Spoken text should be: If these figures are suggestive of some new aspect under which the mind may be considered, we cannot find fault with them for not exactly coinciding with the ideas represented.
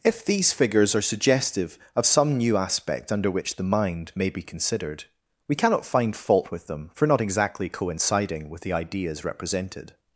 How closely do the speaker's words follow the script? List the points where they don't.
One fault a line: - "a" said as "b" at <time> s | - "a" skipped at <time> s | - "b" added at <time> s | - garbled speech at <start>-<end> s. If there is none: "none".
none